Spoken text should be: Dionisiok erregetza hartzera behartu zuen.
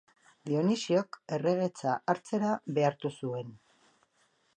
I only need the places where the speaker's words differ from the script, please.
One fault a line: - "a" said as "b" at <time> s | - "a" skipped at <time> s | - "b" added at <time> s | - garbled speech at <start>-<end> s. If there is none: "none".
none